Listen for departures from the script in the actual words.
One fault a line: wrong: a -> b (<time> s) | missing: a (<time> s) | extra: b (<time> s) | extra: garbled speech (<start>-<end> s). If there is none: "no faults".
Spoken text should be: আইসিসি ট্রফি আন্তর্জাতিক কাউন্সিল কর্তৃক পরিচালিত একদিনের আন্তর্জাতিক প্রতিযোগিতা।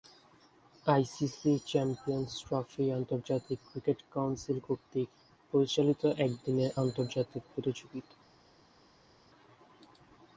extra: চ্যাম্পিয়ন্স (1.7 s)
extra: ক্রিকেট (3.7 s)